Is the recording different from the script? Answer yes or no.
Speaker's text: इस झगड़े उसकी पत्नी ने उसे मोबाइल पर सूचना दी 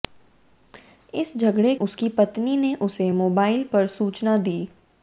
no